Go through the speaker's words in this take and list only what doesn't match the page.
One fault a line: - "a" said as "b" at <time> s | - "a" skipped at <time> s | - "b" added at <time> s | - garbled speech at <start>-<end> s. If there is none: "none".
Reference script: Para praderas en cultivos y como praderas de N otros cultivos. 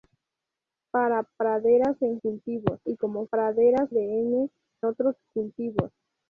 none